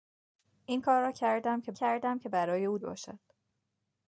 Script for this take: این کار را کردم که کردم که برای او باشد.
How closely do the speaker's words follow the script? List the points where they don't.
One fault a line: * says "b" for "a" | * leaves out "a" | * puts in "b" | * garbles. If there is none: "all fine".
all fine